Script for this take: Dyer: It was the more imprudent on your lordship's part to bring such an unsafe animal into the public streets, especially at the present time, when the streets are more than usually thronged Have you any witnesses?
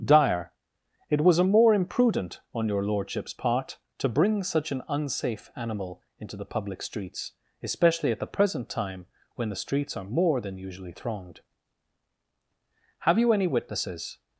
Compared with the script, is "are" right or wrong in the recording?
right